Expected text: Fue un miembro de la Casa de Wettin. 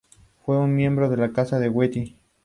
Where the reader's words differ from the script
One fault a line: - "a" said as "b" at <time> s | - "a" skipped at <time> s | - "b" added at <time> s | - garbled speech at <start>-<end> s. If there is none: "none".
none